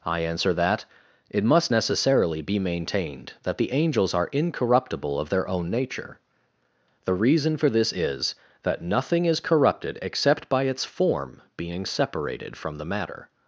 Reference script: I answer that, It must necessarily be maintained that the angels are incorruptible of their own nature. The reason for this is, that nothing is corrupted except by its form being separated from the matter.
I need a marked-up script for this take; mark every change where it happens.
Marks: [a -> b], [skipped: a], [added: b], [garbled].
I answer that, It must necessarily be maintained that the angels are incorruptible of their own nature. The reason for this is, that nothing is corrupted except by its form being separated from the matter.